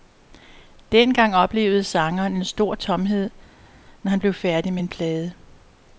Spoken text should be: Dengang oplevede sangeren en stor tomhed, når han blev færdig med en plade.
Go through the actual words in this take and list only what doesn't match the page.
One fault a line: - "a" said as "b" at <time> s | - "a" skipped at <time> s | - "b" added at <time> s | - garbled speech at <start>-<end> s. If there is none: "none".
none